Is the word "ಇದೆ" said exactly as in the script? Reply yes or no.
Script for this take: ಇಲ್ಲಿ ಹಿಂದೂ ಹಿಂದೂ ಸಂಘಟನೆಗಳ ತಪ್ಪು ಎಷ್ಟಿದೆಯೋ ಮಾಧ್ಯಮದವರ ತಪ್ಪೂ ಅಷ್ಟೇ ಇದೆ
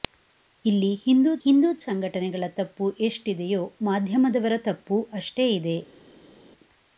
yes